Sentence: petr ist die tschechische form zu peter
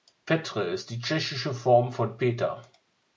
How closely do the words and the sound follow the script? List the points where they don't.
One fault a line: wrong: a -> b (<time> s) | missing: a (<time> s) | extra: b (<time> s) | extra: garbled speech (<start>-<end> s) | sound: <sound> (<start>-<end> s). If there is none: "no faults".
wrong: zu -> von (1.9 s)